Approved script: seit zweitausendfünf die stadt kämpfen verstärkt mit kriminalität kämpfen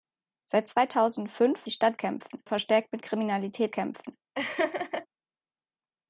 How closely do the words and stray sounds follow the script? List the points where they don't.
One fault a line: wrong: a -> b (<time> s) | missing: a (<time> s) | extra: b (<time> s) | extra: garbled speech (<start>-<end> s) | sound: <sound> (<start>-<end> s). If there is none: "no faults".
sound: laugh (4.4-5.1 s)